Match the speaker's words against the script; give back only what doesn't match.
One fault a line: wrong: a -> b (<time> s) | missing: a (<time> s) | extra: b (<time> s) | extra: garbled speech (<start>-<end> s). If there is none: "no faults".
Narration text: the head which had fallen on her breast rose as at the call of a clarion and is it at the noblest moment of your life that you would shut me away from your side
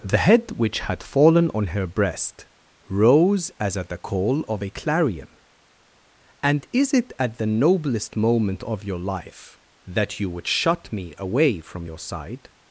no faults